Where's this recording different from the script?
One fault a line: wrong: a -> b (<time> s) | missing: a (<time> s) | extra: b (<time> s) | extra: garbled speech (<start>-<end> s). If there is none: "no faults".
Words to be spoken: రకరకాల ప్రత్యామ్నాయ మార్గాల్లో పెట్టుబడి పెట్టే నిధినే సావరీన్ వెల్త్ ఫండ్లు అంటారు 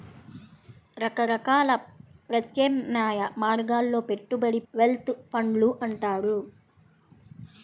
missing: పెట్టే నిధినే సావరీన్ (4.6 s)